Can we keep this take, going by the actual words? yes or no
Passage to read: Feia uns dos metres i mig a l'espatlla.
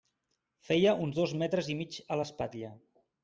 yes